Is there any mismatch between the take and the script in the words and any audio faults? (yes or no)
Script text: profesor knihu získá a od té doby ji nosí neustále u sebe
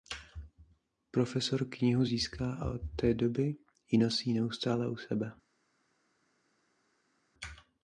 no